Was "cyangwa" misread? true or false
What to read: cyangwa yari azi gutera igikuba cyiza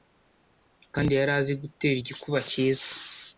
true